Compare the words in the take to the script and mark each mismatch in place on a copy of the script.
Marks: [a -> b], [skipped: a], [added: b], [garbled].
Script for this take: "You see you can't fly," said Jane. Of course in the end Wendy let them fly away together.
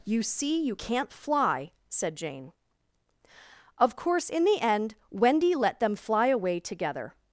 "You see you can't fly," said Jane. Of course in the end Wendy let them fly away together.